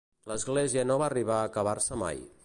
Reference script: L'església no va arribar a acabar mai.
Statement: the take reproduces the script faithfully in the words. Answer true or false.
false